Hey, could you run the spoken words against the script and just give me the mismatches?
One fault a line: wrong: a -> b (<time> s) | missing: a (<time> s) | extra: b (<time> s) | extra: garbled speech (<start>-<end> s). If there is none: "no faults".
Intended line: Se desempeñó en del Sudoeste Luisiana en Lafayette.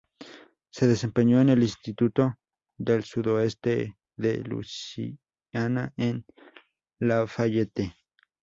extra: el Instituto (1.5 s)
extra: de (4.2 s)